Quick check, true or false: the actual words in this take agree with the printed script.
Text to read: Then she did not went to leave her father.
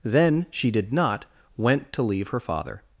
true